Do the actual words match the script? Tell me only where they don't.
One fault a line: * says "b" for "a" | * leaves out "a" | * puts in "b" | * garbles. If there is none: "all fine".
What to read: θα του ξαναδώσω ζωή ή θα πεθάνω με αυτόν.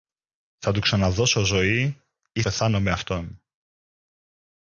* leaves out "θα"